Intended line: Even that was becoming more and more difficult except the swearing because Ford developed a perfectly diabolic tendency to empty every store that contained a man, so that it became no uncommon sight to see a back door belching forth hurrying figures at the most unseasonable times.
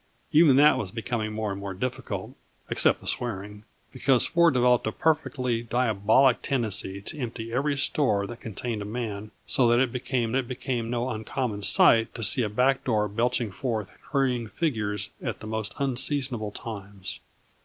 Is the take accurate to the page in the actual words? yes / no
no